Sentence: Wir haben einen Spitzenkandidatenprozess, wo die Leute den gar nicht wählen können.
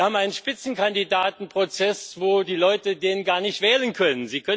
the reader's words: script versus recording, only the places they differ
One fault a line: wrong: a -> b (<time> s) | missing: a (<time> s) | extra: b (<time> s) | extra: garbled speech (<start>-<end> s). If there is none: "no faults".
no faults